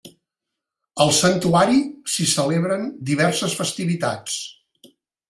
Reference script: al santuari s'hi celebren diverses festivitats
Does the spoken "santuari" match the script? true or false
true